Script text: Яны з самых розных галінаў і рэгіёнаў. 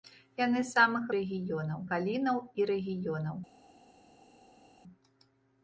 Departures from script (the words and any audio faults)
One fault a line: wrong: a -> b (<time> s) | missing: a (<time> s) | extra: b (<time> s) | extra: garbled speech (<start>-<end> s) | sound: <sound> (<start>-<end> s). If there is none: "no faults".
wrong: розных -> рэгіёнаў (1.2 s)